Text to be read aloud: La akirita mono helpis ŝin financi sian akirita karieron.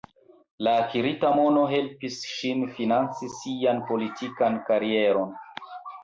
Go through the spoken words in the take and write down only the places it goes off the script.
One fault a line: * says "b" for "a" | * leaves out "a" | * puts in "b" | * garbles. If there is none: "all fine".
* says "politikan" for "akirita"